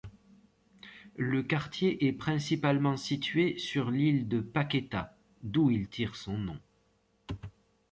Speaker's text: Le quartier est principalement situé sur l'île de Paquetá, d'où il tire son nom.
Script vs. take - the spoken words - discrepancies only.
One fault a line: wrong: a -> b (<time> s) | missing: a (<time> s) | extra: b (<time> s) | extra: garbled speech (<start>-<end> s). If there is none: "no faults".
no faults